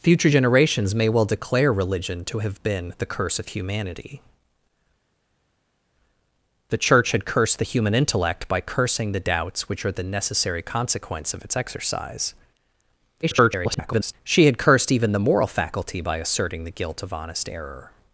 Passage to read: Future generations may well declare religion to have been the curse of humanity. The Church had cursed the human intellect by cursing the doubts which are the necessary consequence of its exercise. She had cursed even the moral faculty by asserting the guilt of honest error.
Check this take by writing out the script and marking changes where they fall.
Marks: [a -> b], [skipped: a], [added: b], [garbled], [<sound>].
Future generations may well declare religion to have been the curse of humanity. The Church had cursed the human intellect by cursing the doubts which are the necessary consequence of its exercise. [garbled] She had cursed even the moral faculty by asserting the guilt of honest error.